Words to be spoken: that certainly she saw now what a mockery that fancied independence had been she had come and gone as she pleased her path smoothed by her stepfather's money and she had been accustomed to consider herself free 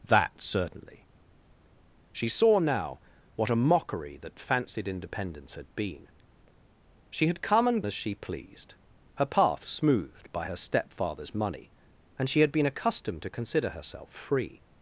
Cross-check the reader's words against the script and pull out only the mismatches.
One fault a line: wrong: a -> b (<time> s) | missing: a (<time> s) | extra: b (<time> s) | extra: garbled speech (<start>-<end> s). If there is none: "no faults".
missing: gone (7.8 s)